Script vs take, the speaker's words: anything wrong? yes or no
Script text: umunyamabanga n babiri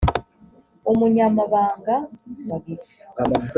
no